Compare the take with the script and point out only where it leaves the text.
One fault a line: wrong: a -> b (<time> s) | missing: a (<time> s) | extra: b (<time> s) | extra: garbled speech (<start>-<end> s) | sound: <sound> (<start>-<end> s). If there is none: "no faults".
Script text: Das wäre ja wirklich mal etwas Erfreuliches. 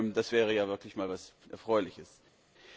no faults